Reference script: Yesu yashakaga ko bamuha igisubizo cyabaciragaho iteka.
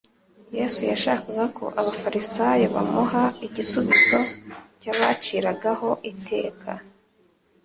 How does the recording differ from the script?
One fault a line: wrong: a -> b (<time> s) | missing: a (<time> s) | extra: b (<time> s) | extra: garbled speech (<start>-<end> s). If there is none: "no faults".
extra: abafarisayo (1.8 s)